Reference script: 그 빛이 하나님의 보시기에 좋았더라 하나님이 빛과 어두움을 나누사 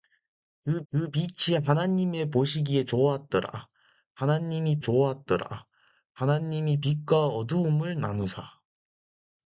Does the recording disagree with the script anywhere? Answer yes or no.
yes